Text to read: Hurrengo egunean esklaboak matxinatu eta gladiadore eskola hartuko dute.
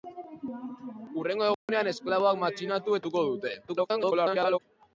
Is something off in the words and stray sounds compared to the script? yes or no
yes